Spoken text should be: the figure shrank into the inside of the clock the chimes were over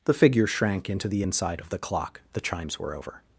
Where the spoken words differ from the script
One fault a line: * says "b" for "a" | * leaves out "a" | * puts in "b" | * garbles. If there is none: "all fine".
all fine